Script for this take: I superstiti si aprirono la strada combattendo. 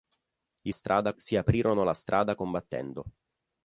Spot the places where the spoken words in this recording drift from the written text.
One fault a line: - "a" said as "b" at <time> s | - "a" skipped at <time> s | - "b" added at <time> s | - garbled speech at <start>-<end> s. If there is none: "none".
- "superstiti" said as "strada" at 0.7 s